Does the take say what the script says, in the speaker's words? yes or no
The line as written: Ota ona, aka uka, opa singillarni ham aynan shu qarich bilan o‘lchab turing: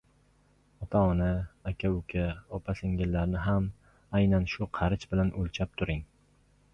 yes